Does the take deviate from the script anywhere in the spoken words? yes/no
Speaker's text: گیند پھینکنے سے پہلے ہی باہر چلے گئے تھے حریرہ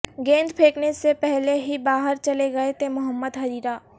yes